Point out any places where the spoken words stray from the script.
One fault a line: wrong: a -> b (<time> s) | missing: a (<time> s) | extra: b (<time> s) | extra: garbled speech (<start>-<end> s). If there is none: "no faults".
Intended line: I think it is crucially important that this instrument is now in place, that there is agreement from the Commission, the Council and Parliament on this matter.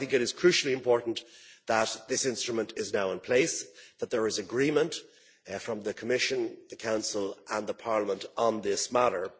no faults